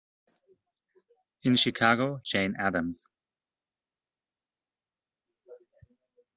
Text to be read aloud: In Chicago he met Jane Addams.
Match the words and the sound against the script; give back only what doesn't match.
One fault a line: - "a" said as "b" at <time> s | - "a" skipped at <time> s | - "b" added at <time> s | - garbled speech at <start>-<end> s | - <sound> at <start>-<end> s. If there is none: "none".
- "he met" skipped at 2.2 s